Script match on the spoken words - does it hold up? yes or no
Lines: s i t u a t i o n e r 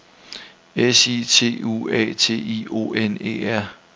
yes